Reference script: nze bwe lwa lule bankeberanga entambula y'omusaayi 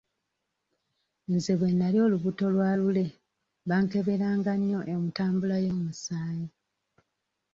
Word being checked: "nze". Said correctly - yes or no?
yes